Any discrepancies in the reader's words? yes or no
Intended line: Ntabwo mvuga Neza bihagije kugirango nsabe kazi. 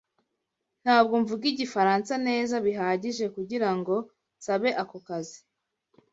yes